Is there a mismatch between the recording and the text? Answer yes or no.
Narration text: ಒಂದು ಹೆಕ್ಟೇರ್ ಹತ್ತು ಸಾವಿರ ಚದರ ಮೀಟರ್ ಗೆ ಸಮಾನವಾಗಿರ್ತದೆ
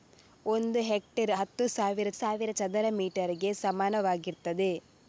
yes